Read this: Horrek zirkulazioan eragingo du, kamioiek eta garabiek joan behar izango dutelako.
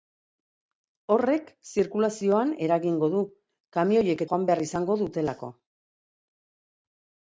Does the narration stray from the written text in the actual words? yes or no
yes